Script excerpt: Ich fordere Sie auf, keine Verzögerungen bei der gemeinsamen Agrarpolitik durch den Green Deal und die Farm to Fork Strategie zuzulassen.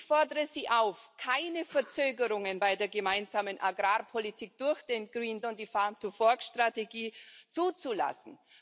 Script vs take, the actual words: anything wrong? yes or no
yes